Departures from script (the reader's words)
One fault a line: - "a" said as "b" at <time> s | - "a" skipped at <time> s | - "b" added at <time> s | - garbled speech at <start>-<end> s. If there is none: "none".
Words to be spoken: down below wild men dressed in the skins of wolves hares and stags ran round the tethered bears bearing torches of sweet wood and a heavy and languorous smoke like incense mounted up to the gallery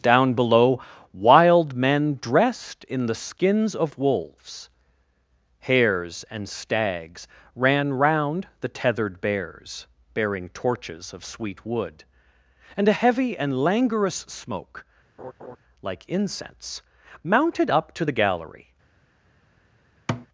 none